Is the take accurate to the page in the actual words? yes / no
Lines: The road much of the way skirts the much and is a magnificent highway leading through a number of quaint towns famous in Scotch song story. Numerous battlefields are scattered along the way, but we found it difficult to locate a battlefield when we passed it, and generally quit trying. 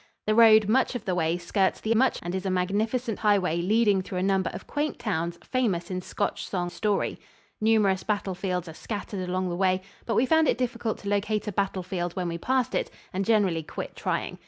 yes